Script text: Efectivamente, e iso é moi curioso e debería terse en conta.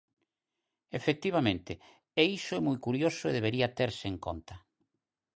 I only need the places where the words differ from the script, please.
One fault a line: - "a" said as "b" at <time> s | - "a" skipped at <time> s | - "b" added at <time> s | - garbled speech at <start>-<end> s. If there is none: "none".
none